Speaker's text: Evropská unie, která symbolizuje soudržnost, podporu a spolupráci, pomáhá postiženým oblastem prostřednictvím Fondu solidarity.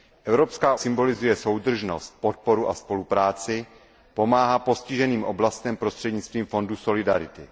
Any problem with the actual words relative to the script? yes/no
yes